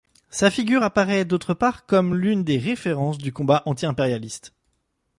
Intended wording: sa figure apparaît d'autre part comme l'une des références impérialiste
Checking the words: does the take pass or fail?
fail